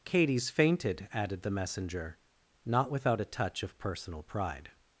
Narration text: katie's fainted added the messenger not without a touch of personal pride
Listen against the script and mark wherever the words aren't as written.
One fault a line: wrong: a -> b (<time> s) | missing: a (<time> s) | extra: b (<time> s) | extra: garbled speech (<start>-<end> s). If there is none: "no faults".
no faults